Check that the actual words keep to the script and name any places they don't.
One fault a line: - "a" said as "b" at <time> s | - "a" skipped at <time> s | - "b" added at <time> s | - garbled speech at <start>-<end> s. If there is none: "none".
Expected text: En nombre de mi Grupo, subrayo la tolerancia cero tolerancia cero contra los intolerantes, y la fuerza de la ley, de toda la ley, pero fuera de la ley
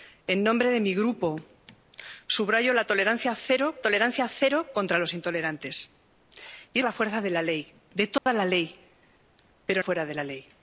none